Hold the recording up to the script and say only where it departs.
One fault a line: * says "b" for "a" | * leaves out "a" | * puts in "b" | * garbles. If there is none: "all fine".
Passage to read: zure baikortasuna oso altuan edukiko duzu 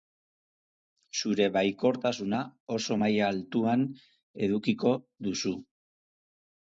* puts in "maila"